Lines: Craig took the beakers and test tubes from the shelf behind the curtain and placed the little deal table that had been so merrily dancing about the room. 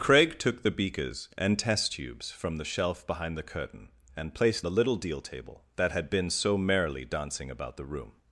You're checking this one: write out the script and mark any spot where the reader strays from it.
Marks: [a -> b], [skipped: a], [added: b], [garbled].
Craig took the beakers and test tubes from the shelf behind the curtain and placed the little deal table that had been so merrily dancing about the room.